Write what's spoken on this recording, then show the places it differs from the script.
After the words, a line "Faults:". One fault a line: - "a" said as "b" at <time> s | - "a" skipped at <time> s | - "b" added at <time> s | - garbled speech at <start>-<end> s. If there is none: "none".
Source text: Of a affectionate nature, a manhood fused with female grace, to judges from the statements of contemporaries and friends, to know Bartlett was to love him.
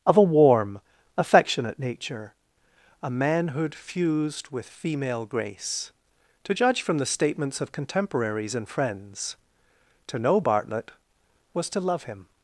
Of a warm, affectionate nature, a manhood fused with female grace, to judge from the statements of contemporaries and friends, to know Bartlett was to love him.
Faults:
- "warm" added at 0.2 s
- "judges" said as "judge" at 6.5 s